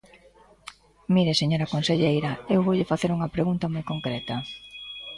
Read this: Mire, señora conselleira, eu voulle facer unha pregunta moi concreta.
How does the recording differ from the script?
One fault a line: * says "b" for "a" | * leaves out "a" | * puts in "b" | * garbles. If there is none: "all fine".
all fine